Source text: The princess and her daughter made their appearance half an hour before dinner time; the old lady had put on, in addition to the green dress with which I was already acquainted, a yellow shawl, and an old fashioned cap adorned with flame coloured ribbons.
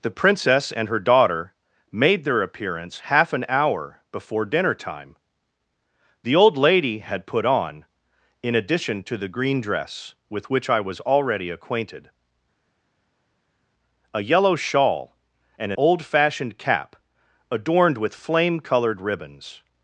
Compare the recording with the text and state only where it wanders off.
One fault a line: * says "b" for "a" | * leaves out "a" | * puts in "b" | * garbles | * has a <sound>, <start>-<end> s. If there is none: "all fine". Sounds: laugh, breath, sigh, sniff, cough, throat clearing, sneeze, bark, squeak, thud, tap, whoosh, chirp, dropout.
* leaves out "an"